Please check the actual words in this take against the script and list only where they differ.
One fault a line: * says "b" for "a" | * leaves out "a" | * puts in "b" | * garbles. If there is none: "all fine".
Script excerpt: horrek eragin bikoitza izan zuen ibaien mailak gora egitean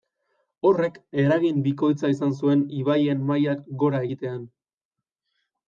all fine